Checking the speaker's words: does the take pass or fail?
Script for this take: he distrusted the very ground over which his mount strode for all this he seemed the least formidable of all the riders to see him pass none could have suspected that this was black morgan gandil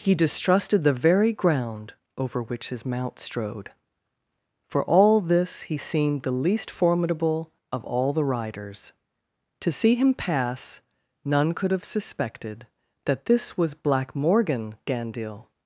pass